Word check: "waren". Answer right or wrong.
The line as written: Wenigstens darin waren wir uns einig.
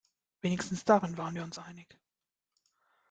right